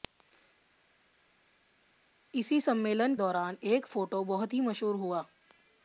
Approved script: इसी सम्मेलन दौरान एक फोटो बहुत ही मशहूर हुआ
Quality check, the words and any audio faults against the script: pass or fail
pass